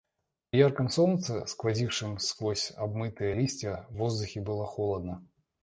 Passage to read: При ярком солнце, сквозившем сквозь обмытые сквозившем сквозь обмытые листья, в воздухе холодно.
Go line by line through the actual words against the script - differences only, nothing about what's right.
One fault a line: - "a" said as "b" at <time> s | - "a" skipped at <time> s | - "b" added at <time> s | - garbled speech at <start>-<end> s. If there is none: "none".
- "сквозившем сквозь обмытые" skipped at 3.4 s
- "было" added at 4.4 s